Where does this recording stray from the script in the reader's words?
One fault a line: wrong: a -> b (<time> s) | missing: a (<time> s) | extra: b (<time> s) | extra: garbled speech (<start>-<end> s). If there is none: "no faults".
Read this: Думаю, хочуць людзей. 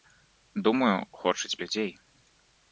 no faults